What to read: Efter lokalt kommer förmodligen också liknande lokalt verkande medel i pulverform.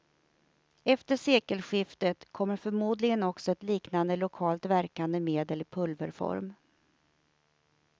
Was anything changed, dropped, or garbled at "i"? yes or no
no